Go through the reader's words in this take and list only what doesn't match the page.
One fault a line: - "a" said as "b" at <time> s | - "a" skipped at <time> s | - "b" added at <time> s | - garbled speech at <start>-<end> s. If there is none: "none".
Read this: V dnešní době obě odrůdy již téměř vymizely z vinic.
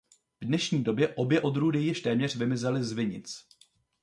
none